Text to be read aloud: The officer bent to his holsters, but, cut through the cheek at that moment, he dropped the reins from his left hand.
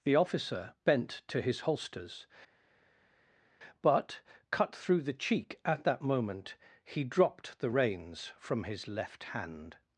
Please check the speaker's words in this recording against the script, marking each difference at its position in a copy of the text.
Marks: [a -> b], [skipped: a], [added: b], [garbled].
The officer bent to his holsters, but, cut through the cheek at that moment, he dropped the reins from his left hand.